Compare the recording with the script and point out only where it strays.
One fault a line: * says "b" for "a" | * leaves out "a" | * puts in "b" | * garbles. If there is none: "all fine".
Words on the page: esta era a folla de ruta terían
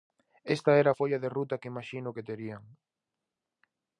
* puts in "que imaxino que"